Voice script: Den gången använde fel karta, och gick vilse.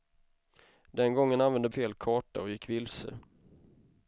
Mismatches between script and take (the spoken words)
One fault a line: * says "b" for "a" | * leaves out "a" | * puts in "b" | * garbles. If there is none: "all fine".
all fine